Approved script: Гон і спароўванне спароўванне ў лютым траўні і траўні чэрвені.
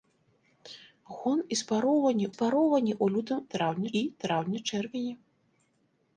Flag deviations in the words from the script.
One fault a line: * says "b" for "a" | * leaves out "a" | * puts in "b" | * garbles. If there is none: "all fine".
all fine